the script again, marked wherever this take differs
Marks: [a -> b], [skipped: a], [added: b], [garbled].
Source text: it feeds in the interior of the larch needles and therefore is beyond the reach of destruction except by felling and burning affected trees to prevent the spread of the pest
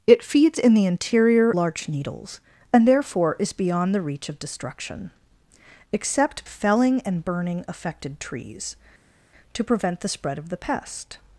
it feeds in the interior [skipped: of the] larch needles and therefore is beyond the reach of destruction except [skipped: by] felling and burning affected trees to prevent the spread of the pest